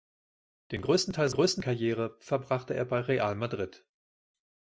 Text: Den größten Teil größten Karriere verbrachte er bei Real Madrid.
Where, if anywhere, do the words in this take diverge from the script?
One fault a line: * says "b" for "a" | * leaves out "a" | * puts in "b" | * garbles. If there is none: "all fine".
all fine